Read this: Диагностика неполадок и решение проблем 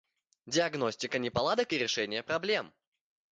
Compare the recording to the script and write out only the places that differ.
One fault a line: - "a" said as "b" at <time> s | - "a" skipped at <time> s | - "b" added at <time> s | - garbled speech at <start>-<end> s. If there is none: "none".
none